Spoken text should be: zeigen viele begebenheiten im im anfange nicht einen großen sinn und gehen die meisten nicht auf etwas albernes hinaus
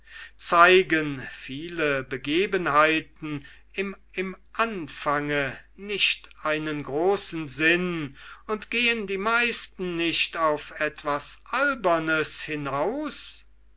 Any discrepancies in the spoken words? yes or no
no